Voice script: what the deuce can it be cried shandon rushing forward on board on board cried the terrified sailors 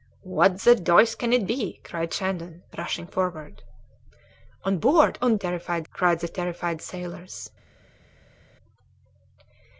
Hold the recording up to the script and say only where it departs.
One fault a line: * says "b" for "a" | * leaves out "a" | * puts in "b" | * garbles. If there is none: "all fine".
* says "terrified" for "board"